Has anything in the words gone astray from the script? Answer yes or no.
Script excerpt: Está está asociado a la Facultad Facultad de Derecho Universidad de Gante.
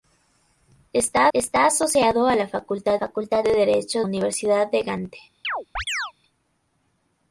no